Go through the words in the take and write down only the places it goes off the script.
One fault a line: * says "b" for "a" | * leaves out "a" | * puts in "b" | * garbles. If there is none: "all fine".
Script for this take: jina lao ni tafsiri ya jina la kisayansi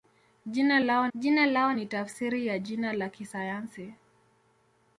* puts in "jina lao"